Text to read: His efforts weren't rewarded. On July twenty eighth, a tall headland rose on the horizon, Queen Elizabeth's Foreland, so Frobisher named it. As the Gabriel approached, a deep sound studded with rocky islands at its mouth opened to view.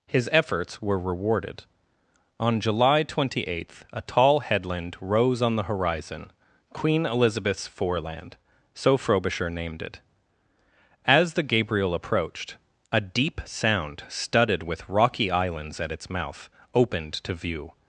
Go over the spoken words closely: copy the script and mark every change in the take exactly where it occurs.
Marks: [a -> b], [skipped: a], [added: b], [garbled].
His efforts [weren't -> were] rewarded. On July twenty eighth, a tall headland rose on the horizon, Queen Elizabeth's Foreland, so Frobisher named it. As the Gabriel approached, a deep sound studded with rocky islands at its mouth opened to view.